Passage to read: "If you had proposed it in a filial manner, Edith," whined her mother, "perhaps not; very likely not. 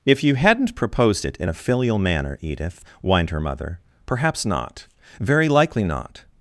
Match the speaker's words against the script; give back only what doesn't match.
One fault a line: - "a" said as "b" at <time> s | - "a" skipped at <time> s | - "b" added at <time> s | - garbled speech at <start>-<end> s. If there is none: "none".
- "had" said as "hadn't" at 0.3 s